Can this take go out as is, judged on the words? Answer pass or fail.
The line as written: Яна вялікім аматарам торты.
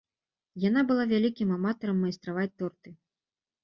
fail